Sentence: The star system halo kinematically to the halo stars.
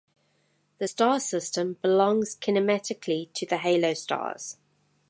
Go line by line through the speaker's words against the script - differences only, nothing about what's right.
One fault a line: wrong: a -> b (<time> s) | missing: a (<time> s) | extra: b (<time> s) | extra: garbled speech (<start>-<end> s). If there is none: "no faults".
wrong: halo -> belongs (1.8 s)